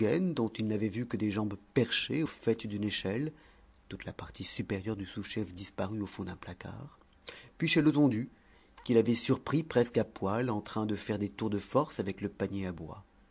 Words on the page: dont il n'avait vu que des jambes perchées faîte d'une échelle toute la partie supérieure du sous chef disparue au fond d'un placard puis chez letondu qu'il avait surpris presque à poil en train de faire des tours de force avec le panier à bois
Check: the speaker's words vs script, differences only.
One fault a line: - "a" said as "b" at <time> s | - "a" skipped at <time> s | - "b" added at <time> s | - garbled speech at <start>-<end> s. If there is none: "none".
none